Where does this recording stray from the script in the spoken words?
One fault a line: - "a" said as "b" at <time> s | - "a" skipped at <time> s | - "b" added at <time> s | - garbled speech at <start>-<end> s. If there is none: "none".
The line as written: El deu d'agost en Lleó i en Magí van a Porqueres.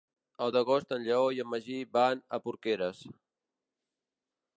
- "deu" skipped at 0.5 s